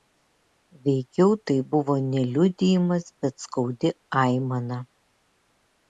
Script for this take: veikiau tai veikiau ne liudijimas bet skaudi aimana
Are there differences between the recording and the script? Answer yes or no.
yes